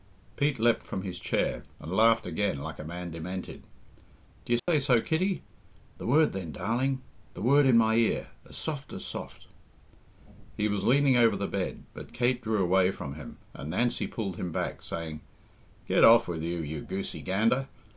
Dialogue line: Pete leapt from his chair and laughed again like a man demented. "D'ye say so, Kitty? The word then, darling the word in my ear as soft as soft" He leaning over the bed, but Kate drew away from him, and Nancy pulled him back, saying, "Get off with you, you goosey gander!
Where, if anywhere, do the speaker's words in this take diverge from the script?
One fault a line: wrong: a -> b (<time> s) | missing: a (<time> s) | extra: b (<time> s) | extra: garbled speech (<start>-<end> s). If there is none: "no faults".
extra: was (10.7 s)